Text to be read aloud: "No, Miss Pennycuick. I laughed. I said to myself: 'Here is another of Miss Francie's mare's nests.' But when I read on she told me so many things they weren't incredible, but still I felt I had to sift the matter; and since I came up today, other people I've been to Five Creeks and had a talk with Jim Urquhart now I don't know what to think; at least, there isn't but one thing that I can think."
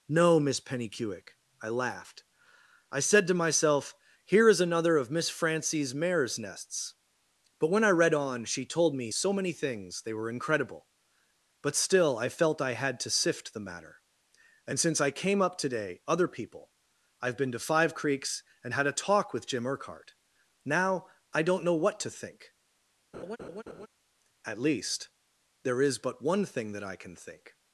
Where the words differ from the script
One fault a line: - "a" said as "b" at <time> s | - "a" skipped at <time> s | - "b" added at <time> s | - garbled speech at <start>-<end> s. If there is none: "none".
- "weren't" said as "were" at 10.1 s
- "isn't" said as "is" at 25.8 s